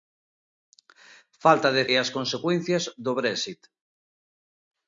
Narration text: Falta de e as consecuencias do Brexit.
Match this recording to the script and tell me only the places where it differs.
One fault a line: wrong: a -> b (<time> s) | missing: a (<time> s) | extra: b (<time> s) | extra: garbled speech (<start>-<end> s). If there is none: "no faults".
no faults